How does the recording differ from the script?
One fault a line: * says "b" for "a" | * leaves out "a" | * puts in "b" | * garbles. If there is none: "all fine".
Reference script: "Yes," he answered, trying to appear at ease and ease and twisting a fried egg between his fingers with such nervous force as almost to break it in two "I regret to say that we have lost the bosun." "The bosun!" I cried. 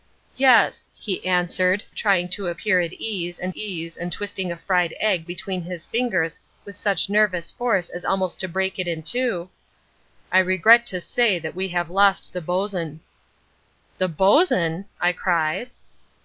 all fine